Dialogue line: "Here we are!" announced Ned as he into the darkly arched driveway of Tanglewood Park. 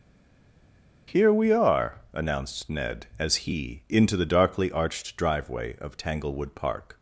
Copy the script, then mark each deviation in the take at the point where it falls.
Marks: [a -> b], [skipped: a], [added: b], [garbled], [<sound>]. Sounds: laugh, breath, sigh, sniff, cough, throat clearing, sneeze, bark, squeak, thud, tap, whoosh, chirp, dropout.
"Here we are!" announced Ned as he into the darkly arched driveway of Tanglewood Park.